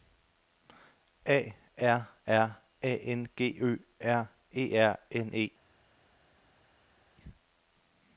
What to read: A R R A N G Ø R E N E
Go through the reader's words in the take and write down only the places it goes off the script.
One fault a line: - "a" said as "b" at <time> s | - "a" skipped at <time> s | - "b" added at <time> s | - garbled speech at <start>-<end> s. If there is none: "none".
- "R" added at 4.8 s